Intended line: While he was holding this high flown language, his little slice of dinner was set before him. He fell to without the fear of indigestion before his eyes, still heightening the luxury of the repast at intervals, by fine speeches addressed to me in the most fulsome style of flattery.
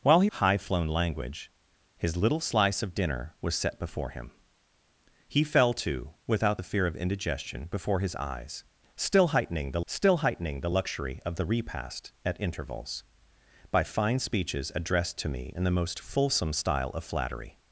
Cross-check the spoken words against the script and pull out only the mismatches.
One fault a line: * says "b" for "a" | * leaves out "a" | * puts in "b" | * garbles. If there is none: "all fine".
* leaves out "was holding this"
* puts in "still heightening the"